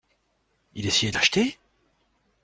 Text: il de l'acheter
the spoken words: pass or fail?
fail